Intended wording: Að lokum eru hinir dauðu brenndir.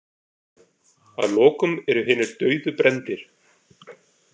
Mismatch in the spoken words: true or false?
false